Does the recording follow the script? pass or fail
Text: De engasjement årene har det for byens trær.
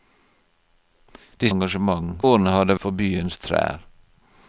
pass